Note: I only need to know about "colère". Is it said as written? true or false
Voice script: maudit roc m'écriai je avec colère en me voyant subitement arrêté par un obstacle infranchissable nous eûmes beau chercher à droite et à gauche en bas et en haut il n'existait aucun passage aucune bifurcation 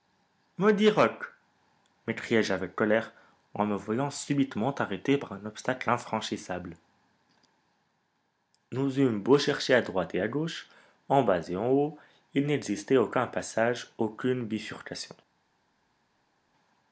true